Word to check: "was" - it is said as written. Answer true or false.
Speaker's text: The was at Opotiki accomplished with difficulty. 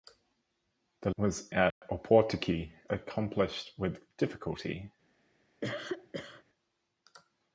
true